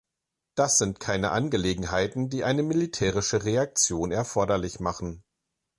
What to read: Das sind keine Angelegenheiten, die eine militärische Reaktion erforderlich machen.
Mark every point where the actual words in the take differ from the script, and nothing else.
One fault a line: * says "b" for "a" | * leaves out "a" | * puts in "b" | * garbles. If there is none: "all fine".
all fine